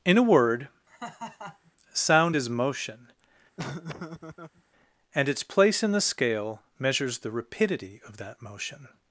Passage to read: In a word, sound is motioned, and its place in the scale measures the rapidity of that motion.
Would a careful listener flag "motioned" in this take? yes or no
yes